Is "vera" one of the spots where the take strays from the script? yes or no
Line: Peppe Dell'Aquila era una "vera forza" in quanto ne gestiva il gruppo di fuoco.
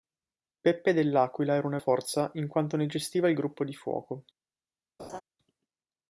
yes